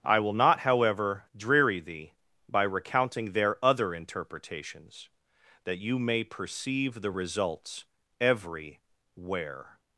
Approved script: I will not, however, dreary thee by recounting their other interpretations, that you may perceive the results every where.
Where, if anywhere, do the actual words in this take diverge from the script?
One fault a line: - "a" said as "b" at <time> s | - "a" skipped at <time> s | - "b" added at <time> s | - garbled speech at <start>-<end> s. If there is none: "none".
none